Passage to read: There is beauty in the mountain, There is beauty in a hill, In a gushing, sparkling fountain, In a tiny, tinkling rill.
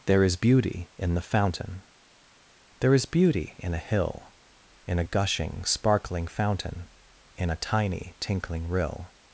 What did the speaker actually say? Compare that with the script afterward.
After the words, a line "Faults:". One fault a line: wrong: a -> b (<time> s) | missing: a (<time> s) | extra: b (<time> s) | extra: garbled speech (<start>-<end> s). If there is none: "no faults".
There is beauty in the fountain, There is beauty in a hill, In a gushing, sparkling fountain, In a tiny, tinkling rill.
Faults:
wrong: mountain -> fountain (1.2 s)